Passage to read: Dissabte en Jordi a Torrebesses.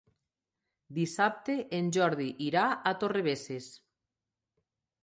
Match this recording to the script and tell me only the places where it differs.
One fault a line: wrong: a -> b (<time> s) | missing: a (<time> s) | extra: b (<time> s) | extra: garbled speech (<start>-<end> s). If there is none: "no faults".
extra: irà (2.5 s)